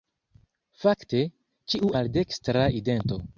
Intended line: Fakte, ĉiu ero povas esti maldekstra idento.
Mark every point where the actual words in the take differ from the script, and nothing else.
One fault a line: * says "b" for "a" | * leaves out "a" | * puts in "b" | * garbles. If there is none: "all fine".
* leaves out "ero povas esti"